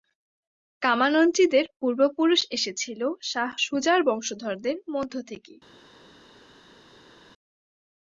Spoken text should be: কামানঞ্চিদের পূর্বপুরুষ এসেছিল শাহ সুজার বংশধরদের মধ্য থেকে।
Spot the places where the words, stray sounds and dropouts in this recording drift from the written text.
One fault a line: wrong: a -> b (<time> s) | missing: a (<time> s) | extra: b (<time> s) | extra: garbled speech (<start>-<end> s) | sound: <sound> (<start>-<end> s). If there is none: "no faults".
no faults